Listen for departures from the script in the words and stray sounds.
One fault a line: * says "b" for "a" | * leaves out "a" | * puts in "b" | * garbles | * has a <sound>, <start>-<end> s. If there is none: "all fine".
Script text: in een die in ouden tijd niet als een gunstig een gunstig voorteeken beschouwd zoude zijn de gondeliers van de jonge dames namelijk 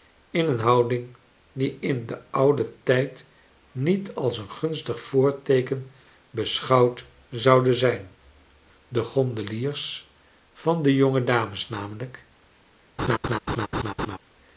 * puts in "houding"
* puts in "den"
* leaves out "een gunstig"
* has a laugh, 13.0-14.2 s